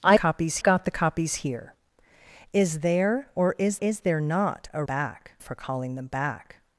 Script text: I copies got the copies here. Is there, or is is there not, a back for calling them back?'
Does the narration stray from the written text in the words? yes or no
no